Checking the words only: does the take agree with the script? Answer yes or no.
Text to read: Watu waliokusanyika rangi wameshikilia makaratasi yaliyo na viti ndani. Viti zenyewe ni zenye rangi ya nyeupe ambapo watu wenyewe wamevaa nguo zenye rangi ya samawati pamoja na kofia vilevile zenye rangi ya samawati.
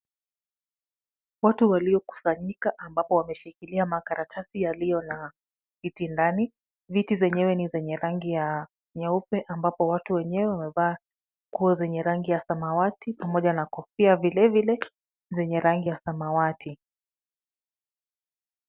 no